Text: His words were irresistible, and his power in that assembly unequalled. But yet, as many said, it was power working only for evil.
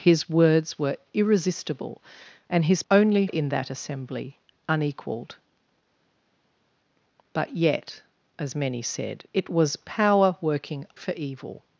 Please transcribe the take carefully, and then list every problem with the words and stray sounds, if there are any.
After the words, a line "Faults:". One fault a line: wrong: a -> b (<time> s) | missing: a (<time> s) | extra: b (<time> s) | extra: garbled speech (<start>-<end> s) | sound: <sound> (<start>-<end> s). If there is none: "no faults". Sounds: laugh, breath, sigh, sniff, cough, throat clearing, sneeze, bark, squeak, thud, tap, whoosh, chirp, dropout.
His words were irresistible, and his only in that assembly unequalled. But yet, as many said, it was power working for evil.
Faults:
wrong: power -> only (2.9 s)
missing: only (10.8 s)